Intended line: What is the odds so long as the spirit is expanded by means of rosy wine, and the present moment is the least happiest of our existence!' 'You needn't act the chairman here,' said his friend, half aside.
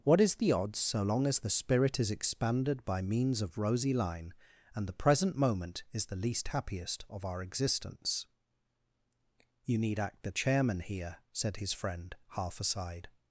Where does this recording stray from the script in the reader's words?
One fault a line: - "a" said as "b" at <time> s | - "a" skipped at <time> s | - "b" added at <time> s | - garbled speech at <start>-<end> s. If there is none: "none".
- "wine" said as "line" at 3.9 s
- "needn't" said as "need" at 9.8 s